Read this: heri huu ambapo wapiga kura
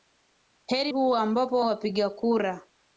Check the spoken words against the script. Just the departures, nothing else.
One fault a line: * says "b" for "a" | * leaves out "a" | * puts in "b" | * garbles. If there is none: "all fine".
all fine